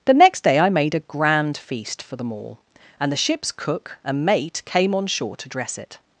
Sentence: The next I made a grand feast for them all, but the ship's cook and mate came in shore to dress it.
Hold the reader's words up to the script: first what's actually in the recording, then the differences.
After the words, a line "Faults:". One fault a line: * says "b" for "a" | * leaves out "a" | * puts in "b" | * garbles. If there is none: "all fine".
The next day I made a grand feast for them all, and the ship's cook and mate came on shore to dress it.
Faults:
* puts in "day"
* says "and" for "but"
* says "on" for "in"